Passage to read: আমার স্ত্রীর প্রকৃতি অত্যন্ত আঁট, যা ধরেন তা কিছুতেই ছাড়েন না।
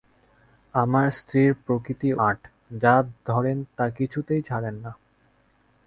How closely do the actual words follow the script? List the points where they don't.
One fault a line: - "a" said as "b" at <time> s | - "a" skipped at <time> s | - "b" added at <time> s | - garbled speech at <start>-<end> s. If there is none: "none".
- "অত্যন্ত" skipped at 2.1 s